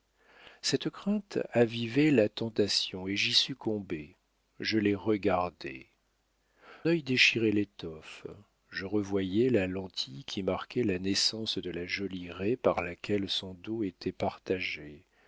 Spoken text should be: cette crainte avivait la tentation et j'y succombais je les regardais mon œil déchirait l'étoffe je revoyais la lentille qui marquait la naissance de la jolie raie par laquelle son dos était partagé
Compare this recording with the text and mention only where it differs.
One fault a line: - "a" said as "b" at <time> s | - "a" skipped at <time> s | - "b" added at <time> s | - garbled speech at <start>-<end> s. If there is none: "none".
- "mon" skipped at 5.8 s